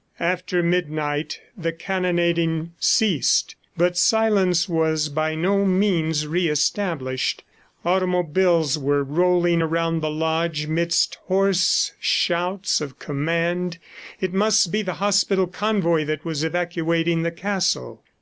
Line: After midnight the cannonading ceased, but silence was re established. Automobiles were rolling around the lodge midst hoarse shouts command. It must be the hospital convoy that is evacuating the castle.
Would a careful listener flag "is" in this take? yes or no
yes